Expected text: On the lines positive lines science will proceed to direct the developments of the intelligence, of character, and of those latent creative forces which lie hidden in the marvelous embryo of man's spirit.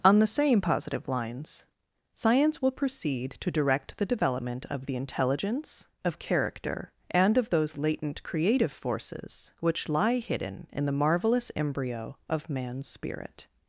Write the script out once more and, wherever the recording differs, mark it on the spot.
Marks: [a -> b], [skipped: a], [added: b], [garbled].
On the [lines -> same] positive lines science will proceed to direct the [developments -> development] of the intelligence, of character, and of those latent creative forces which lie hidden in the marvelous embryo of man's spirit.